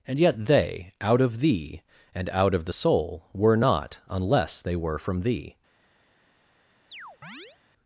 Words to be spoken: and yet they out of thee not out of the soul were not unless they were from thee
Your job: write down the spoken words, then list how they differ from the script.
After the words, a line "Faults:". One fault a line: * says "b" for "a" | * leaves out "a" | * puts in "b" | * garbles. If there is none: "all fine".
and yet they out of thee and out of the soul were not unless they were from thee
Faults:
* says "and" for "not"